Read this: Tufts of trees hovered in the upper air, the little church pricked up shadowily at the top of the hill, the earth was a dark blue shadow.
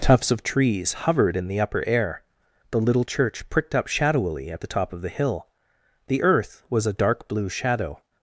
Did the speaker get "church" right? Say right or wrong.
right